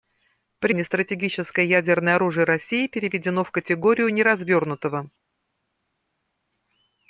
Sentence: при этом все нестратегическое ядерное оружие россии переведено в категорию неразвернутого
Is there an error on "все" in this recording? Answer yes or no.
yes